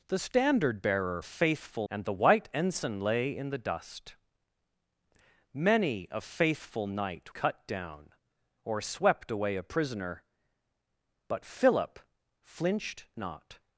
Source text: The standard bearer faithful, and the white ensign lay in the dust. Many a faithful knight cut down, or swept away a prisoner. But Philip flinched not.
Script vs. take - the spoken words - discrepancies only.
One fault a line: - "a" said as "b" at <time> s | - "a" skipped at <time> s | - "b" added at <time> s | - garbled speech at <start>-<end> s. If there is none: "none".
none